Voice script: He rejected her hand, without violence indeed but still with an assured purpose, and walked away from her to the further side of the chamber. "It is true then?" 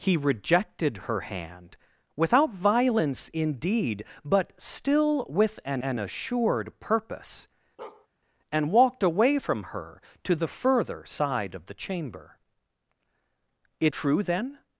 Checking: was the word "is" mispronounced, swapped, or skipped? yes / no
yes